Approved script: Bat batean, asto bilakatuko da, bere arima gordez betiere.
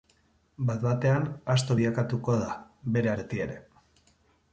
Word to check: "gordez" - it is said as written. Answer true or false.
false